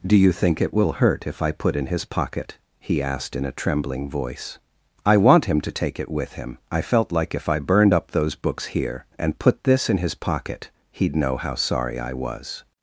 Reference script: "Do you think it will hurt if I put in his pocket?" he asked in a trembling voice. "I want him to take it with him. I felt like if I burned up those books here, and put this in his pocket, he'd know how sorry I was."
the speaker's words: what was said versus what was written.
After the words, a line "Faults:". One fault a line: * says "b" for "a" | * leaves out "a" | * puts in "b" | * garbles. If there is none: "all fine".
"Do you think it will hurt if I put in his pocket?" he asked in a trembling voice. "I want him to take it with him. I felt like if I burned up those books here, and put this in his pocket, he'd know how sorry I was."
Faults:
all fine